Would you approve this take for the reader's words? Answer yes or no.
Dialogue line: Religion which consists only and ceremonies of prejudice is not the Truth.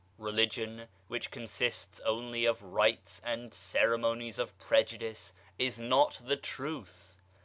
no